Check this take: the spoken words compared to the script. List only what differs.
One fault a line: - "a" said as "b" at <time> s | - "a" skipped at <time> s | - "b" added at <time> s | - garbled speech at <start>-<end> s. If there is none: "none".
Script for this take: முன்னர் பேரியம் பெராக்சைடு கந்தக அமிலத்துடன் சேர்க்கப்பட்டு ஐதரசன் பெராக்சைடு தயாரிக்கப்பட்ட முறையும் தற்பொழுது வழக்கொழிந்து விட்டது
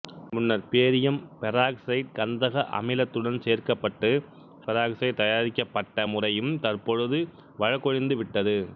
- "ஐதரசன்" skipped at 4.1 s